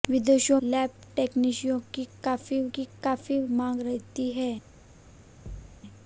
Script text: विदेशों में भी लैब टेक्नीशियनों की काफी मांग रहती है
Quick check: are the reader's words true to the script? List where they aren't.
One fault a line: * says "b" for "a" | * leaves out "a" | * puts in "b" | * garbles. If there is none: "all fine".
* says "लैब टेक्नीशियनों की काफी" for "में भी लैब टेक्नीशियनों"